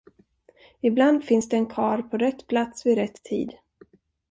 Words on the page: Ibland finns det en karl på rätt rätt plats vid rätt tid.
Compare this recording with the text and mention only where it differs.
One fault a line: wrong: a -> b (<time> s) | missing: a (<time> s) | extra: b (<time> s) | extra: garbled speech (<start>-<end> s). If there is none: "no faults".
missing: rätt (2.5 s)